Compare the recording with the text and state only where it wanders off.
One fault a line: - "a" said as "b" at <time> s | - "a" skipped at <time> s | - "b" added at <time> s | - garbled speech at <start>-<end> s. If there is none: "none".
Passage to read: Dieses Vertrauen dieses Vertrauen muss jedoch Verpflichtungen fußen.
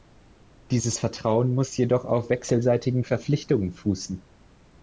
- "dieses Vertrauen muss jedoch" said as "muss jedoch auf wechselseitigen" at 1.5 s